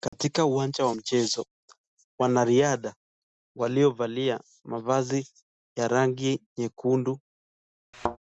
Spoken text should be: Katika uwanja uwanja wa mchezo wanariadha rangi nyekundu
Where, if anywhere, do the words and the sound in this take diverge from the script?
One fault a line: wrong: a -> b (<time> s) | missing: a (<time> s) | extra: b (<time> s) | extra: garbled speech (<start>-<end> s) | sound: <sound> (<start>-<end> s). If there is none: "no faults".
sound: dropout (0.1-0.1 s)
missing: uwanja (0.8 s)
extra: waliovalia mavazi ya (3.6 s)
sound: thud (7.9-8.2 s)